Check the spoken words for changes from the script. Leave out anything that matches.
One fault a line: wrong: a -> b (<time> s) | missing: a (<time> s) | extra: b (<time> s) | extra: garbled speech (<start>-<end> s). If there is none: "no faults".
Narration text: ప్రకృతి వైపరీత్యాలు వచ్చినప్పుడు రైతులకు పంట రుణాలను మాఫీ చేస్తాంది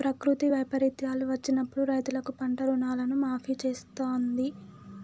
no faults